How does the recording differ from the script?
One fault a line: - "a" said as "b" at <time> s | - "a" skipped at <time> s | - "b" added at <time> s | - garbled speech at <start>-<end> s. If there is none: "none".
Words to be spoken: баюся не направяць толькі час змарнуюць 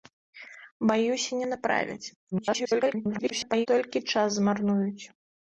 - garbled speech at 2.3-3.7 s